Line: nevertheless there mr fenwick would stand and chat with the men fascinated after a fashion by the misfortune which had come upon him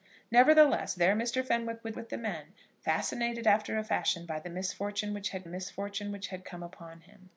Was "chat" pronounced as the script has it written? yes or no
no